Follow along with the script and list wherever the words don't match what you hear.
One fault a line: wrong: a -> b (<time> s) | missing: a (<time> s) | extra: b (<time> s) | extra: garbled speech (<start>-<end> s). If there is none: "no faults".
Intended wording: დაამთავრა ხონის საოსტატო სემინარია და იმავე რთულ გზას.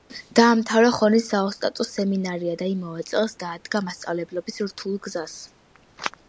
extra: წელს დაადგა მასწავლებლობის (3.1 s)